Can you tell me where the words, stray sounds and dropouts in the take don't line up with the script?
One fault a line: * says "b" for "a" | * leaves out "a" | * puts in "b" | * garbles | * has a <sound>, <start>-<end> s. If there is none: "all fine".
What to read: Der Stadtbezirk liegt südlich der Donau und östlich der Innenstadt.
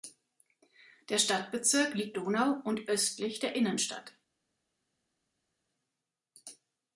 * leaves out "südlich der"